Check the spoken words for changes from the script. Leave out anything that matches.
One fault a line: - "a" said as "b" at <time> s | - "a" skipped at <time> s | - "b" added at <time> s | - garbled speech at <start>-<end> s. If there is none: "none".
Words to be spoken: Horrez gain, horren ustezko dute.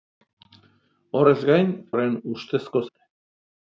none